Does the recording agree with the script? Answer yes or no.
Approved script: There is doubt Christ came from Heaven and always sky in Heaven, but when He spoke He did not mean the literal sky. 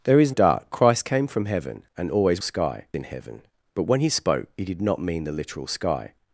yes